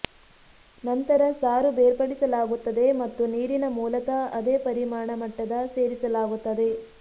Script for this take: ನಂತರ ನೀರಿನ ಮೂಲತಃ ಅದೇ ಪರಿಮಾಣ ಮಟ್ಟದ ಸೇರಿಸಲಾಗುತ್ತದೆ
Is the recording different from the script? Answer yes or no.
yes